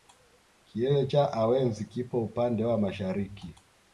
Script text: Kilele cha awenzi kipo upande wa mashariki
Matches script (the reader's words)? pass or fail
pass